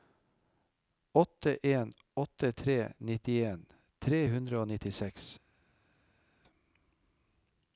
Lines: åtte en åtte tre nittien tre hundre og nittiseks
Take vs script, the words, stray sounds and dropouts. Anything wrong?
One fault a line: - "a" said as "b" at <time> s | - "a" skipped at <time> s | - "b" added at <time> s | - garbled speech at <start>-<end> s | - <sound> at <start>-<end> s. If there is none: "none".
none